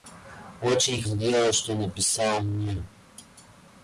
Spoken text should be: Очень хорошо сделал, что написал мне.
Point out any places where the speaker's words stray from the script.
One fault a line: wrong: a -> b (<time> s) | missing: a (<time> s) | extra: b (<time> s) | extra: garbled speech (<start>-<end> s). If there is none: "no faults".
missing: хорошо (1.0 s)